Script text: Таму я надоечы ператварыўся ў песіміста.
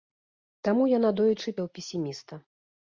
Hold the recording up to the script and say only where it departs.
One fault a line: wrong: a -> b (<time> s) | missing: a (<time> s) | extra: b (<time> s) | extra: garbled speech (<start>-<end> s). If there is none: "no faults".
missing: ператварыўся (1.6 s)